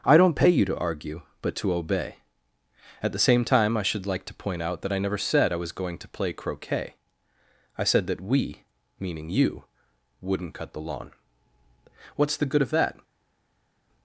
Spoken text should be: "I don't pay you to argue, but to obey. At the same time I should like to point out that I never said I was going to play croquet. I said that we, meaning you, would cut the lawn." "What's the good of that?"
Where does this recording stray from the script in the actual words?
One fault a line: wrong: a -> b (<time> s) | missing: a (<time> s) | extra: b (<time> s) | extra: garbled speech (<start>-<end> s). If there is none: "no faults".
wrong: would -> wouldn't (10.2 s)